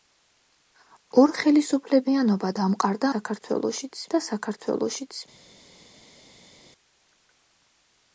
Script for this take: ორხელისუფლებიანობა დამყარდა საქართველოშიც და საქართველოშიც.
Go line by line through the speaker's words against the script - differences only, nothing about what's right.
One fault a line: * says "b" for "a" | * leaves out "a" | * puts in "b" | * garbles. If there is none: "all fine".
all fine